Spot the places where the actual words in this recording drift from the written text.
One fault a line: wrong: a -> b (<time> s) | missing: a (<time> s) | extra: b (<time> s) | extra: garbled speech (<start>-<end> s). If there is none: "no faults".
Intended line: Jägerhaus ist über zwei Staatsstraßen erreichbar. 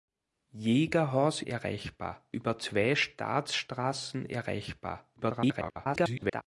wrong: ist -> erreichbar (1.4 s)
extra: garbled speech (5.2-6.4 s)